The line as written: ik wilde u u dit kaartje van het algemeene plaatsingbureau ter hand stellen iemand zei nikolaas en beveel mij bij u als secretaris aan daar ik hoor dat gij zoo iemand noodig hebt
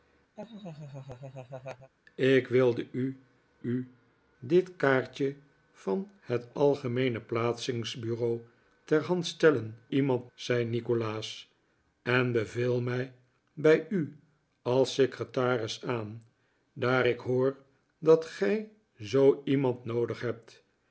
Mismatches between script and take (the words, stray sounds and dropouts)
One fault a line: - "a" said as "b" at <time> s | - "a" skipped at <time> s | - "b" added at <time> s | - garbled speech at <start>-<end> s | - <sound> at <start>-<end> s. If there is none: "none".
- laugh at 0.4-1.9 s